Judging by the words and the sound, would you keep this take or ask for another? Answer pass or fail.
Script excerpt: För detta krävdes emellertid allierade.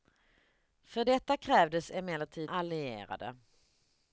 pass